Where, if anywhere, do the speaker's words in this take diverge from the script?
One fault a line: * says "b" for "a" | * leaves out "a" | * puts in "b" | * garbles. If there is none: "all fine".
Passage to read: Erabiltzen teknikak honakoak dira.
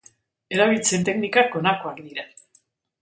all fine